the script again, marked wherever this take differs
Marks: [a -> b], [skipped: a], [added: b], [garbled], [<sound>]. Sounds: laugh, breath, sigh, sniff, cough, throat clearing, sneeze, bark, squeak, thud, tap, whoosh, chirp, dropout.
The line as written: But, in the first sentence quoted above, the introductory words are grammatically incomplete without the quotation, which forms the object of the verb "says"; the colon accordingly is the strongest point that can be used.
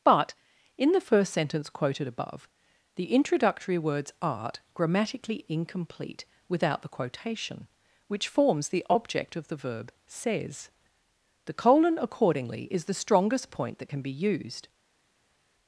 But, in the first sentence quoted above, the introductory words [are -> art] grammatically incomplete without the quotation, which forms the object of the verb "says"; the colon accordingly is the strongest point that can be used.